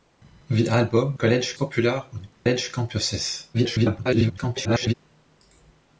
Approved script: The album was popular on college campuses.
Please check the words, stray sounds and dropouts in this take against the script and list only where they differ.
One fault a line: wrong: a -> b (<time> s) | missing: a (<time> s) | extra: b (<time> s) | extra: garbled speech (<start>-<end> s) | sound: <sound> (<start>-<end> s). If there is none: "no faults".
wrong: was -> college (1.1 s)
sound: dropout (2.3-2.5 s)
extra: garbled speech (3.5-4.9 s)